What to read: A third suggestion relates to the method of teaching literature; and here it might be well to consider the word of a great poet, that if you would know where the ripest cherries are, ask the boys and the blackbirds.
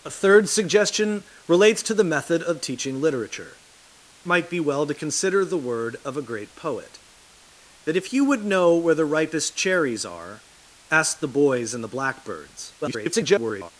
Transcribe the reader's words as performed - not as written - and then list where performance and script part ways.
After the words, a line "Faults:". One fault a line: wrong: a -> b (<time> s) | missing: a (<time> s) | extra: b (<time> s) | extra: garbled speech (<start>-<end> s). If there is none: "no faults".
A third suggestion relates to the method of teaching literature; might be well to consider the word of a great poet, that if you would know where the ripest cherries are, ask the boys and the blackbirds. [garbled]
Faults:
missing: and here it (3.6 s)
extra: garbled speech (12.8-13.7 s)